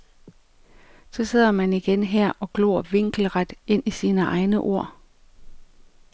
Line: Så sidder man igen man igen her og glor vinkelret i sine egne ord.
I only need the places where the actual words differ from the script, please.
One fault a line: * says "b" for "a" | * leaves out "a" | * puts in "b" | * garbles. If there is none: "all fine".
* leaves out "man igen"
* puts in "ind"